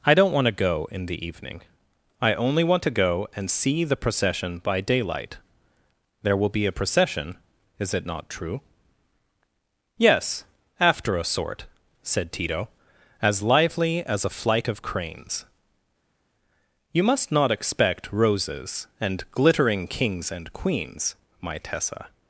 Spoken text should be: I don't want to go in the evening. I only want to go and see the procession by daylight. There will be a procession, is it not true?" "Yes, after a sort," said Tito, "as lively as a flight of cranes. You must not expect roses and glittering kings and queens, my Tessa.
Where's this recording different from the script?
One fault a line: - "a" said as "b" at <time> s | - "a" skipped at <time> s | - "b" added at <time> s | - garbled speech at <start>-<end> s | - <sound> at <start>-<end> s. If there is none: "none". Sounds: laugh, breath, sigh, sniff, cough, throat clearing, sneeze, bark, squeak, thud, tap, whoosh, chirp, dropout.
none